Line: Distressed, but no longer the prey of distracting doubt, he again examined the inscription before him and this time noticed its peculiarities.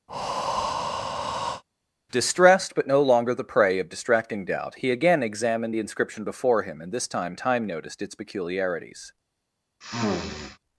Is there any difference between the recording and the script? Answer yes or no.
yes